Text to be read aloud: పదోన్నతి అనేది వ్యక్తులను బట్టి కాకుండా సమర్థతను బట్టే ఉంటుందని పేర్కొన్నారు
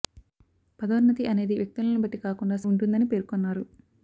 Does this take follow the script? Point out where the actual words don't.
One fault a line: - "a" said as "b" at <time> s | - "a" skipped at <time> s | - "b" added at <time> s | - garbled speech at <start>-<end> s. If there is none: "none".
- "సమర్థతను బట్టే" skipped at 2.6 s